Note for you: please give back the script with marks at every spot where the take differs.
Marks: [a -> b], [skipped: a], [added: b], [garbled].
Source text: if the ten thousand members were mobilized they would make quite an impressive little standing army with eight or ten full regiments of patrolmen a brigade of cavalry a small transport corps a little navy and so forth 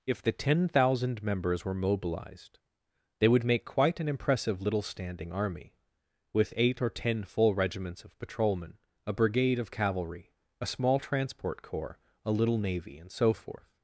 if the ten thousand members were mobilized they would make quite an impressive little standing army with eight or ten full regiments of patrolmen a brigade of cavalry a small transport corps a little navy and so forth